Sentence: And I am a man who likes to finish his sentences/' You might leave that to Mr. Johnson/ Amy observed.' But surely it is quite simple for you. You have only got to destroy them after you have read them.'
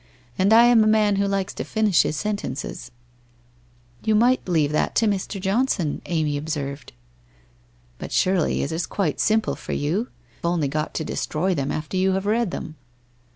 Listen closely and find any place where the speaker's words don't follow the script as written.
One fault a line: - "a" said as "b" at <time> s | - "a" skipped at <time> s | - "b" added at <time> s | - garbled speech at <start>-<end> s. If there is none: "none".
- "You have" skipped at 10.1 s